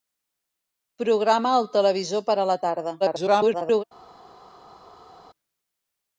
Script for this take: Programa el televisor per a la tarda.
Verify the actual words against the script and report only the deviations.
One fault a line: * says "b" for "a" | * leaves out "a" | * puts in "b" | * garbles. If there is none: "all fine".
* garbles